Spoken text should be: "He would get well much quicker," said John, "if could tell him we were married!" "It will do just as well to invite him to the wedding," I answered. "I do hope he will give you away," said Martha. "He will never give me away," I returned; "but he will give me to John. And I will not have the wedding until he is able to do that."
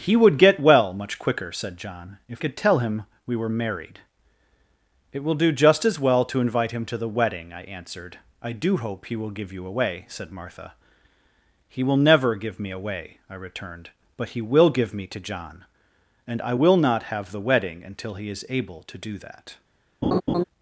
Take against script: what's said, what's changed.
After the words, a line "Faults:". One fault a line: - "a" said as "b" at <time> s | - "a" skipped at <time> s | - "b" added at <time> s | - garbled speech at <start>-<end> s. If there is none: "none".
"He would get well much quicker," said John, "if could tell him we were married!" "It will do just as well to invite him to the wedding," I answered. "I do hope he will give you away," said Martha. "He will never give me away," I returned; "but he will give me to John. And I will not have the wedding until he is able to do that."
Faults:
none